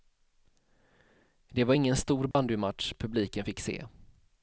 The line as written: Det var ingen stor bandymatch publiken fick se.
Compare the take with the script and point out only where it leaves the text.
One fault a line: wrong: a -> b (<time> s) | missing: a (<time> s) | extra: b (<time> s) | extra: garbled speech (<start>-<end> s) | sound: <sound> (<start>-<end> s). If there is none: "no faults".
sound: dropout (2.3-2.3 s)